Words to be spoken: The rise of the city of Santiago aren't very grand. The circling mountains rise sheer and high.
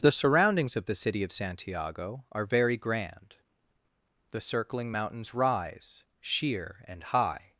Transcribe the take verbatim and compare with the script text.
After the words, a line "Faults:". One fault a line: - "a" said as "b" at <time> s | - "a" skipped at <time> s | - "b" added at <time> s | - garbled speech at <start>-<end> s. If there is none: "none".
The surroundings of the city of Santiago are very grand. The circling mountains rise sheer and high.
Faults:
- "rise" said as "surroundings" at 0.1 s
- "aren't" said as "are" at 2.3 s